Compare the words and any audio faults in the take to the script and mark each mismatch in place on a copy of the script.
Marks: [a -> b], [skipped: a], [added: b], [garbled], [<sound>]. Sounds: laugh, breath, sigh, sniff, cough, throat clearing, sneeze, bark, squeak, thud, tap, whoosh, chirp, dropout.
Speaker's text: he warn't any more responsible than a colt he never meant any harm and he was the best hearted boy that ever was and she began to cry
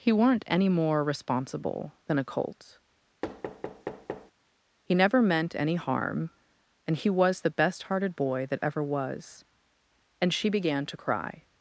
he [warn't -> weren't] any more responsible than a colt [thud] he never meant any harm and he was the best hearted boy that ever was and she began to cry